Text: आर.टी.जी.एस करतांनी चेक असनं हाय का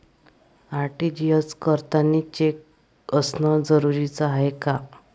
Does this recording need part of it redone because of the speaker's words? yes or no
yes